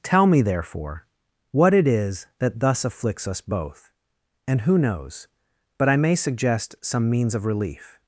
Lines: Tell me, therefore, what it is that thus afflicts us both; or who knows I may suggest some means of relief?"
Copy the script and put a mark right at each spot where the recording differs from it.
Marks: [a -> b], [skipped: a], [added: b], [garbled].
Tell me, therefore, what it is that thus afflicts us both; [or -> and] who knows [added: but] I may suggest some means of relief?"